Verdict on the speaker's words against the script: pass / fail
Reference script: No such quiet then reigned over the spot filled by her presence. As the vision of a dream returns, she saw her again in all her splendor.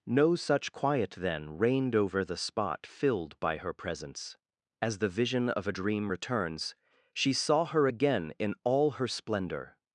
pass